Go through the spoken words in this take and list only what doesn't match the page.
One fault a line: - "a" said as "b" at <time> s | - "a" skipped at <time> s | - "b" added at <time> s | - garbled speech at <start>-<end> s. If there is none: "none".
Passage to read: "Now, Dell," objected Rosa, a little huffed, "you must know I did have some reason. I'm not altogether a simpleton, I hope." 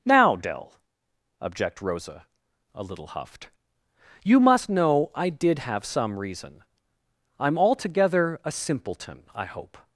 - "objected" said as "object" at 1.4 s
- "not" skipped at 7.6 s